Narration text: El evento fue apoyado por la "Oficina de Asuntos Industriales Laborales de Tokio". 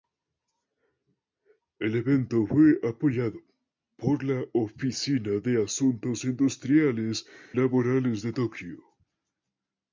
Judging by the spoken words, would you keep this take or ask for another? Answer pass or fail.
pass